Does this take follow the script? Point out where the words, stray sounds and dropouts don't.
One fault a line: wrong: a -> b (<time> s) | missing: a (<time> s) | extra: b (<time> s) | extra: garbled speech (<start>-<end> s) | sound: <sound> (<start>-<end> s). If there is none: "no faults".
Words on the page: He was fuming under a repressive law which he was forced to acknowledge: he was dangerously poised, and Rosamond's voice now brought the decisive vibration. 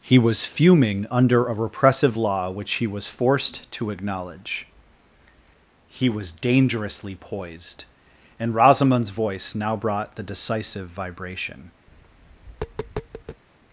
sound: tap (11.9-13.4 s)